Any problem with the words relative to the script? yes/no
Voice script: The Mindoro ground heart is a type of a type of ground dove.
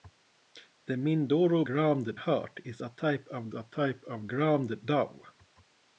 no